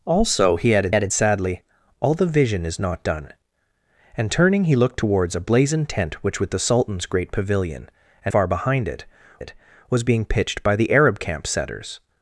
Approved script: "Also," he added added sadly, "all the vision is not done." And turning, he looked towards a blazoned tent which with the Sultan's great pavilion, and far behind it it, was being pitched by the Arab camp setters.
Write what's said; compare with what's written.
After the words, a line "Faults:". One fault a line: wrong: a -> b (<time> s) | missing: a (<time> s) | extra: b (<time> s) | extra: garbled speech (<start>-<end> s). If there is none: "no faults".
"Also," he added added sadly, "all the vision is not done." And turning, he looked towards a blazoned tent which with the Sultan's great pavilion, and far behind it it, was being pitched by the Arab camp setters.
Faults:
no faults